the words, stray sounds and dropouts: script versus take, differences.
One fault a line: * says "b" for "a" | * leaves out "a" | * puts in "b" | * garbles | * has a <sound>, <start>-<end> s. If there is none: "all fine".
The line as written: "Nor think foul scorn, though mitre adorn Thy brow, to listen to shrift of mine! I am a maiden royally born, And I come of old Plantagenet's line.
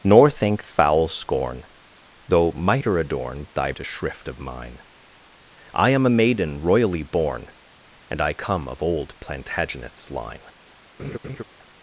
* leaves out "brow to listen"
* has a laugh, 11.0-11.4 s